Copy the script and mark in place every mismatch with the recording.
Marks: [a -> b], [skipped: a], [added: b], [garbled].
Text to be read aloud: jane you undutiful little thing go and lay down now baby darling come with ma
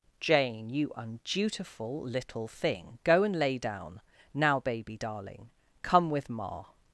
jane you undutiful little thing go and lay down now baby darling come with ma